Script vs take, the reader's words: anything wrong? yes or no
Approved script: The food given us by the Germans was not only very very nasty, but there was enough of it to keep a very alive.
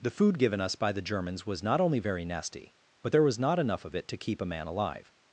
yes